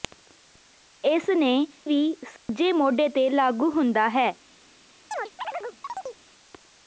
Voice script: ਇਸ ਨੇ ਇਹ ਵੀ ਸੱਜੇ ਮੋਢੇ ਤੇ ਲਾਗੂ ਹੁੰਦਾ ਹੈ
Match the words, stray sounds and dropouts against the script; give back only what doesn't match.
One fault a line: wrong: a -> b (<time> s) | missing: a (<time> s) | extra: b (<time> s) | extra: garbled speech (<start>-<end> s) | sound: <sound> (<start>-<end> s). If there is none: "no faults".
missing: ਇਹ (1.5 s)
sound: dropout (2.4-2.5 s)
sound: chirp (5.1-6.2 s)